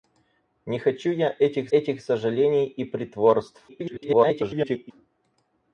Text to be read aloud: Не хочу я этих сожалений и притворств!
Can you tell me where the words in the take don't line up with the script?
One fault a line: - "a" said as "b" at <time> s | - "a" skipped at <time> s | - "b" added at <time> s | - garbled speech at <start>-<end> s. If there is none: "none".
- "этих" added at 1.7 s
- garbled speech at 3.7-4.9 s